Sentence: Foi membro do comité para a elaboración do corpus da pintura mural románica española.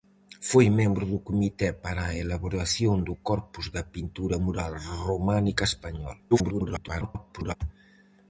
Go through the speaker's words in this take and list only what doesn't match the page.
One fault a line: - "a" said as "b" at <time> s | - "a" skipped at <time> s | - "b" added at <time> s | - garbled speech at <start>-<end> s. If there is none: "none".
- garbled speech at 6.3-7.6 s